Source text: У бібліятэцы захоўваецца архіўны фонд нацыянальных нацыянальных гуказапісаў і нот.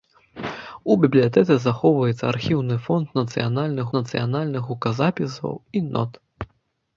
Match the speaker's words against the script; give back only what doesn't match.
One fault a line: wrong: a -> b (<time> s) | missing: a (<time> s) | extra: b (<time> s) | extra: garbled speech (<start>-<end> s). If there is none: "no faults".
no faults